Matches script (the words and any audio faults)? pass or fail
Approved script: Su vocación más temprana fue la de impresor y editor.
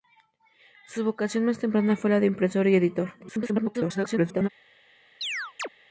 fail